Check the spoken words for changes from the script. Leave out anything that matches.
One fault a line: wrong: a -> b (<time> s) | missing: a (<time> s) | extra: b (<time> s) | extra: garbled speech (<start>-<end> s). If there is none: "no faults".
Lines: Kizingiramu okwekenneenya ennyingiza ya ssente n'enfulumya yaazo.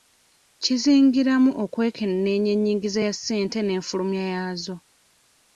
no faults